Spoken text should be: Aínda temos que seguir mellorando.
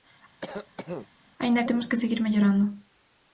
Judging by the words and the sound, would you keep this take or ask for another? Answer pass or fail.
fail